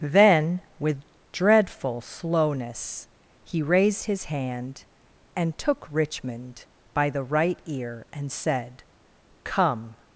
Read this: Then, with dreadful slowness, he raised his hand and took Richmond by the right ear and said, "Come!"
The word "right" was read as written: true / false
true